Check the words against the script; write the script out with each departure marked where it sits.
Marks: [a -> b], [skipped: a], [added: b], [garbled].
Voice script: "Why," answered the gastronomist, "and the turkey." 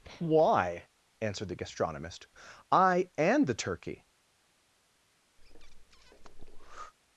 "Why," answered the gastronomist, [added: I] "and the turkey."